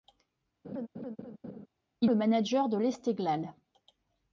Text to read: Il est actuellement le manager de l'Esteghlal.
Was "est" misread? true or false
true